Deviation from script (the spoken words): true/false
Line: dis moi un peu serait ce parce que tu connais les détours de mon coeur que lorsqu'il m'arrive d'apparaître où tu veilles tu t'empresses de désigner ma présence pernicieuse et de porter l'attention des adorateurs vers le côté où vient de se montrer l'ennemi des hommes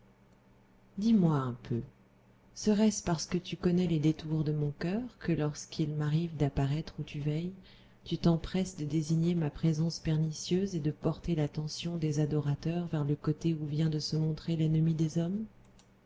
false